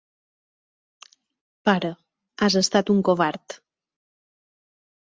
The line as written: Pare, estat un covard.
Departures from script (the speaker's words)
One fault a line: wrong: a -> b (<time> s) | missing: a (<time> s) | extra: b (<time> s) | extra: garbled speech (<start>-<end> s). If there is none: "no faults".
extra: has (2.5 s)